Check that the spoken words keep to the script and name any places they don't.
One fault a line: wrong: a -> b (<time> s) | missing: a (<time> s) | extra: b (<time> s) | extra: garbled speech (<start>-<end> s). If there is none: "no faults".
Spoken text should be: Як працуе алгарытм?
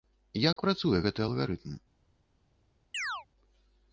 extra: гэты (1.1 s)